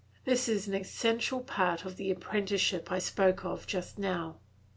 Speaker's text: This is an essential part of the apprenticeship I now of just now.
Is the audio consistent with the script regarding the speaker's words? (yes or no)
no